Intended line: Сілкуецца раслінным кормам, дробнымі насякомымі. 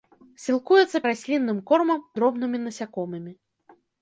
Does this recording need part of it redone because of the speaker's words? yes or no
no